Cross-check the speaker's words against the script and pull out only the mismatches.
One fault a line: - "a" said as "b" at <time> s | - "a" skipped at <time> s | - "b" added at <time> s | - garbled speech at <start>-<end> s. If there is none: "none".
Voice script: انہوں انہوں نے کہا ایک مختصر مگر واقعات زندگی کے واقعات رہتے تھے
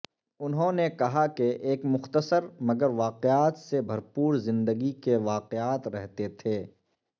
- "انہوں" skipped at 0.7 s
- "کہ" added at 1.4 s
- "سے بھرپور" added at 3.6 s